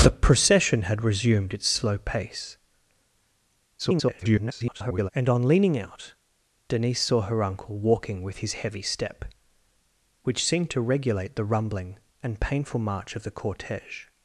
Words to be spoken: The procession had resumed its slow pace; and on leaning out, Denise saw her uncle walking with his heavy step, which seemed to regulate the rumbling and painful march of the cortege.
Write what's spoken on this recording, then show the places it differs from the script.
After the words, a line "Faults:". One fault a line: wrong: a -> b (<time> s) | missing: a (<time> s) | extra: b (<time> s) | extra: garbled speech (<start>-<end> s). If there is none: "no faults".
The procession had resumed its slow pace; [garbled] and on leaning out, Denise saw her uncle walking with his heavy step, which seemed to regulate the rumbling and painful march of the cortege.
Faults:
extra: garbled speech (3.8-5.1 s)